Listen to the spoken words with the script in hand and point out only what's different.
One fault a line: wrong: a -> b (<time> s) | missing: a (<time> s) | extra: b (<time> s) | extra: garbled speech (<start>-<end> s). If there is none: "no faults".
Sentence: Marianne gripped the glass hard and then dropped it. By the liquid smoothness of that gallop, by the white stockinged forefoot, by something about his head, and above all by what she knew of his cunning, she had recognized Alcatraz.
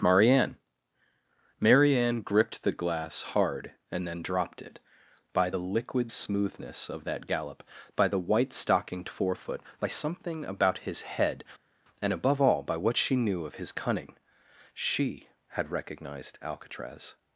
extra: marianne (1.6 s)